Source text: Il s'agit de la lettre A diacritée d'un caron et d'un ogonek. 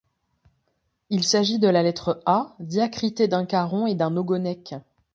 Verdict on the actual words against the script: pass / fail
pass